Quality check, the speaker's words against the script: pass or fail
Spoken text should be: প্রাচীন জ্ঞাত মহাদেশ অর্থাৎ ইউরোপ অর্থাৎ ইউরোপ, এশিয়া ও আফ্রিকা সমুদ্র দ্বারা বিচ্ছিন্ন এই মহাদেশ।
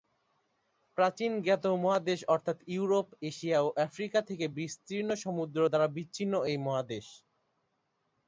fail